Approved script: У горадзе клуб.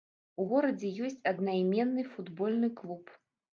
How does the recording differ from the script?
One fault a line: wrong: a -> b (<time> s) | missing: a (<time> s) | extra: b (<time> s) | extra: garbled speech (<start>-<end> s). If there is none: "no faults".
extra: ёсць аднайменны футбольны (1.1 s)